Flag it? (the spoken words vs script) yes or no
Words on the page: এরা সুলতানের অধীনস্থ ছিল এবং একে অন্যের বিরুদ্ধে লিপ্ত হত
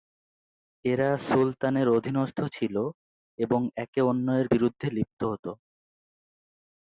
no